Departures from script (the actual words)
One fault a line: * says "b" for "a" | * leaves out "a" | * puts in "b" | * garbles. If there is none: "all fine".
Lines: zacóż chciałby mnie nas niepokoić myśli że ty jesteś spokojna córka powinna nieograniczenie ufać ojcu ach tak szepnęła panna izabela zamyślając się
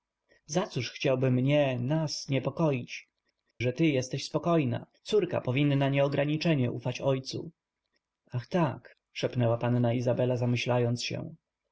* leaves out "myśli"